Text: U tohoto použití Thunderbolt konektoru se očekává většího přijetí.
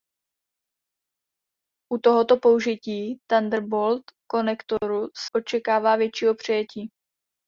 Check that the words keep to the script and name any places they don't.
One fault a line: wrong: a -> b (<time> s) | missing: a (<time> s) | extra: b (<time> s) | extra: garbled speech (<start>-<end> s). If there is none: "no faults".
missing: se (5.1 s)